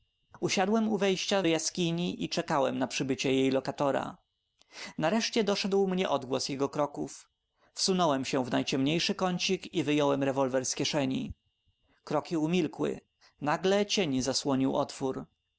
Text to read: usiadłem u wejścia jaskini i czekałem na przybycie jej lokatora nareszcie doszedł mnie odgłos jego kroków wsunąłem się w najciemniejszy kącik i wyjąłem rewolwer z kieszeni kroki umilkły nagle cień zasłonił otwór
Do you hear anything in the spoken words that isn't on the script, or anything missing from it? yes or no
no